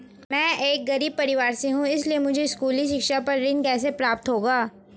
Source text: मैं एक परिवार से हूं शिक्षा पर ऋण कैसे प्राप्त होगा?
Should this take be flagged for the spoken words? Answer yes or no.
yes